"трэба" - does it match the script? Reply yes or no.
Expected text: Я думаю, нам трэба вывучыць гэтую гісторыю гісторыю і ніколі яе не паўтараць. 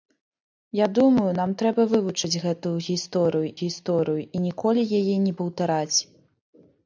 yes